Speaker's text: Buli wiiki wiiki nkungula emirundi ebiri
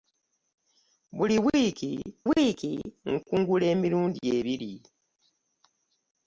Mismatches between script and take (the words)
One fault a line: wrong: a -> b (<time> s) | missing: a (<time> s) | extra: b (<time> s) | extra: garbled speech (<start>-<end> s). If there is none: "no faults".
no faults